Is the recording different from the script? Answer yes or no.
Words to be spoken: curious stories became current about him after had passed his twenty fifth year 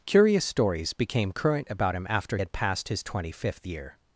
no